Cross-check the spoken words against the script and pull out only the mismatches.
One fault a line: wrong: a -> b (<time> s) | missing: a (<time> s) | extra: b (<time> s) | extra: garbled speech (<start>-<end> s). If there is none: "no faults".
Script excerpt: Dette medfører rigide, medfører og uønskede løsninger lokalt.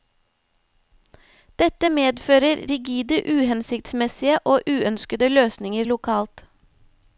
wrong: medfører -> uhensiktsmessige (3.3 s)